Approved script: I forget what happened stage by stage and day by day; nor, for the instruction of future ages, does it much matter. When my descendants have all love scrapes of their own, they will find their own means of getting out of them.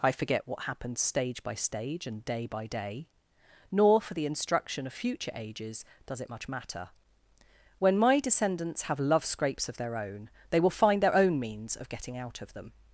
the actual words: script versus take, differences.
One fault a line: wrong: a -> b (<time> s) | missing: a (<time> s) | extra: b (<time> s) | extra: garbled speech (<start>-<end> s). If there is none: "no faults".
missing: all (9.0 s)